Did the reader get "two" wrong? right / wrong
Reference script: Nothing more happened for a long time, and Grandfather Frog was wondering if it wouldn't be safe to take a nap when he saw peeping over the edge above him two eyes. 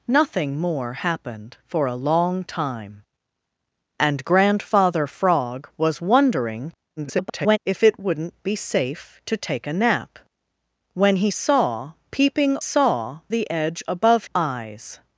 wrong